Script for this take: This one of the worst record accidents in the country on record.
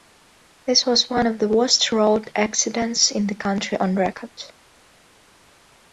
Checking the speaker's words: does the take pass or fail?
fail